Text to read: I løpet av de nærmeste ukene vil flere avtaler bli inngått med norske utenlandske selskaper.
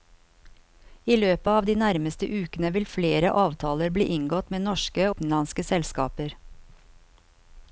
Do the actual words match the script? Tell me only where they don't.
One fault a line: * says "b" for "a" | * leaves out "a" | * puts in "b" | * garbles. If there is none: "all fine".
all fine